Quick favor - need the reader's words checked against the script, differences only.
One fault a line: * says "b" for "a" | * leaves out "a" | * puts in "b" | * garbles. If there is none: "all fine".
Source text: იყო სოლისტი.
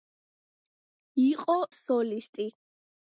all fine